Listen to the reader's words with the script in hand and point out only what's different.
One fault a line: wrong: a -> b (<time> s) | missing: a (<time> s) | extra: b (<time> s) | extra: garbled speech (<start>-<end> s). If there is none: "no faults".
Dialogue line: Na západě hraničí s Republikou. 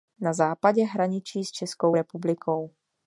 extra: Českou (1.5 s)